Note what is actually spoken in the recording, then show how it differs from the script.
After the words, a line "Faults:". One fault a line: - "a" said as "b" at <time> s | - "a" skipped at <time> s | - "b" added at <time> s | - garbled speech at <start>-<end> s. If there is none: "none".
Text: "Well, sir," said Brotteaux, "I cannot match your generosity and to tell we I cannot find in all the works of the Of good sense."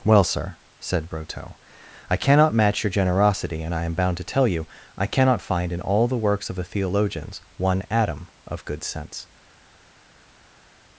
"Well, sir," said Brotteaux, "I cannot match your generosity and I am bound to tell you I cannot find in all the works of the Theologians one atom of good sense."
Faults:
- "I am bound" added at 3.7 s
- "we" said as "you" at 4.5 s
- "Theologians one atom" added at 6.6 s